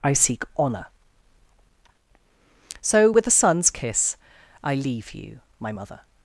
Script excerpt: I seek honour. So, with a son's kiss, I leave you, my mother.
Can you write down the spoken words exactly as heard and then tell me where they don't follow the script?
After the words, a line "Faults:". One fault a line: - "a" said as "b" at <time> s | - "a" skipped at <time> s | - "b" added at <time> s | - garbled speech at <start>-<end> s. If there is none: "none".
I seek honour. So, with a son's kiss, I leave you, my mother.
Faults:
none